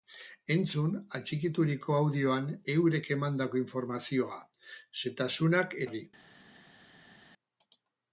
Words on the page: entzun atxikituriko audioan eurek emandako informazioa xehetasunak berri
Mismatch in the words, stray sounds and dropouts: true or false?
false